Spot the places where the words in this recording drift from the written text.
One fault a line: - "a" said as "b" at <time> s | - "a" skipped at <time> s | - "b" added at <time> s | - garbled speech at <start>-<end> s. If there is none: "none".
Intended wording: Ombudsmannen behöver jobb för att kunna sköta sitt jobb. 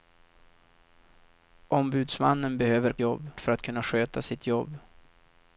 none